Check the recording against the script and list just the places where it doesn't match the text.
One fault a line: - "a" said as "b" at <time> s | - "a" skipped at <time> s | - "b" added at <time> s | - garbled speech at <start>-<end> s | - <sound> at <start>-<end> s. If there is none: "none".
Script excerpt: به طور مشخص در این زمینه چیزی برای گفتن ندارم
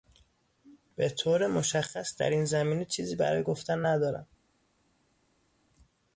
none